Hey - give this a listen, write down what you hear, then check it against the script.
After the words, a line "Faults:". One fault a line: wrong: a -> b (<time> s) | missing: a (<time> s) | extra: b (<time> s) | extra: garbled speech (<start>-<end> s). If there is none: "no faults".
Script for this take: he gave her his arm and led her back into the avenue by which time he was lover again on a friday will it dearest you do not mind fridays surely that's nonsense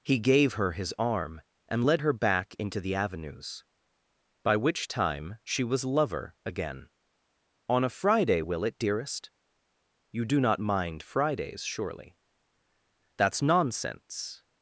he gave her his arm and led her back into the avenues by which time she was lover again on a friday will it dearest you do not mind fridays surely that's nonsense
Faults:
wrong: avenue -> avenues (2.9 s)
wrong: he -> she (5.4 s)